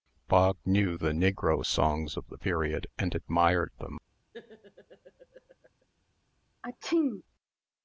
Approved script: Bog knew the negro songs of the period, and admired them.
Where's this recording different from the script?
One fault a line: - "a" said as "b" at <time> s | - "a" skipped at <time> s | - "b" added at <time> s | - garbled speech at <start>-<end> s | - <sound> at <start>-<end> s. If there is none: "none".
- laugh at 4.3-5.9 s
- sneeze at 6.6-7.2 s